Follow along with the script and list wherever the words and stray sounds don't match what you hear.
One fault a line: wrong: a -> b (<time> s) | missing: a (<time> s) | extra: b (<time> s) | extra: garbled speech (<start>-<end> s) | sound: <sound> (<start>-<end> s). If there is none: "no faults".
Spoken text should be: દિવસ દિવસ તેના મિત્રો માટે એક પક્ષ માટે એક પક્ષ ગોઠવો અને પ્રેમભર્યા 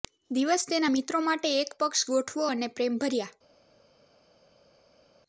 missing: દિવસ (0.6 s)
missing: માટે એક પક્ષ (2.1 s)